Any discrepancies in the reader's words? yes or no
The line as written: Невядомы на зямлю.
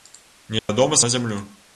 no